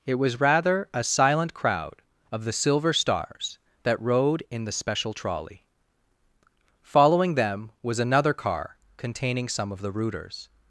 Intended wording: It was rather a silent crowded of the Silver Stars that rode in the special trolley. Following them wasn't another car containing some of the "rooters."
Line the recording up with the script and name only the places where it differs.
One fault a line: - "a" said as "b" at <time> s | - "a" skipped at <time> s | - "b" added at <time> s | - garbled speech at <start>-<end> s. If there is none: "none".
- "crowded" said as "crowd" at 1.5 s
- "wasn't" said as "was" at 7.8 s